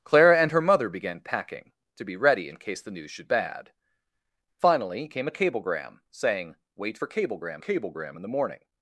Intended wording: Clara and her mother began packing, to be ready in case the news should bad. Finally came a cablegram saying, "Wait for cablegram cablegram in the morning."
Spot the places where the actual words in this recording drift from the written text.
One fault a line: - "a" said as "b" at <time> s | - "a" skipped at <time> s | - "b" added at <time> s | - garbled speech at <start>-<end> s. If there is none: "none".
none